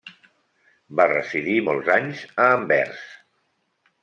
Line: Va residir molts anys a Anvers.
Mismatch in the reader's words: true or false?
false